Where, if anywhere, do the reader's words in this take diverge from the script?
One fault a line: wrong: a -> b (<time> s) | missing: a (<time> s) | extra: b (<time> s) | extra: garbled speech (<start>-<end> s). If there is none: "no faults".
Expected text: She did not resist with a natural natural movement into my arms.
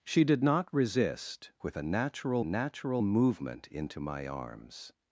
no faults